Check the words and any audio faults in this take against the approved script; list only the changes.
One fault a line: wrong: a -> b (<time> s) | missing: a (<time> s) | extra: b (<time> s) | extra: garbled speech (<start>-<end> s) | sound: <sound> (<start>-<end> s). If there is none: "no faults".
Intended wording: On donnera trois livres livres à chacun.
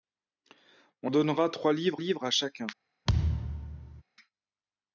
sound: thud (3.1-4.0 s)